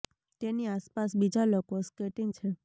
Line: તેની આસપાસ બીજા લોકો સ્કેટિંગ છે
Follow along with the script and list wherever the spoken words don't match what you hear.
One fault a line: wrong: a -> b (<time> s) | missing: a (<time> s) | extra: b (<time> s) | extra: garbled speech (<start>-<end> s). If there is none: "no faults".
no faults